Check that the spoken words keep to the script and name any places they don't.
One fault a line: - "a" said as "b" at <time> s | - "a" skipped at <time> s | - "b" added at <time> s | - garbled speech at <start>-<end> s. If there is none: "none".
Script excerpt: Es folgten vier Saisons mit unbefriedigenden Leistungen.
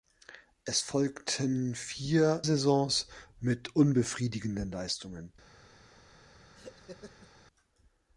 none